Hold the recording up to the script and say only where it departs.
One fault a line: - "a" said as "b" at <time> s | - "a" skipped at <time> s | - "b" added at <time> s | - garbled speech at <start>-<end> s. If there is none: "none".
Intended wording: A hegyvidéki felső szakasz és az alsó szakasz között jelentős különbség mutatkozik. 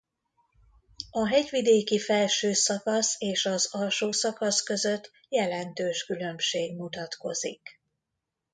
none